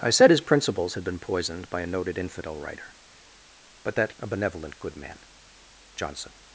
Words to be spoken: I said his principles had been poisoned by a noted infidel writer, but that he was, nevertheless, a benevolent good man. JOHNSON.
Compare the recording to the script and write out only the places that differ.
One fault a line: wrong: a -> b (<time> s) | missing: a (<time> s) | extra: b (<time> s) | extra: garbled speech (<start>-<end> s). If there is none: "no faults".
missing: he was nevertheless (4.1 s)